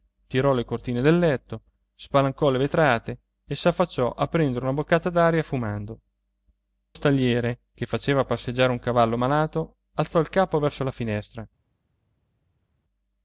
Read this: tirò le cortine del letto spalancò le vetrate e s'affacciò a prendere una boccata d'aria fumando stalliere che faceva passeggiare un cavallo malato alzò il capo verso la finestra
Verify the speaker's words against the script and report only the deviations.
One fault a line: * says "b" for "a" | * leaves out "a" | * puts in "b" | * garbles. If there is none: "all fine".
all fine